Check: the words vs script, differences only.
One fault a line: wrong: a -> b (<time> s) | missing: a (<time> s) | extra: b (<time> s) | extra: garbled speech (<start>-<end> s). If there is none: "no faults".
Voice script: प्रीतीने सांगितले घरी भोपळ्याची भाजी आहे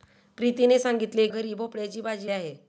no faults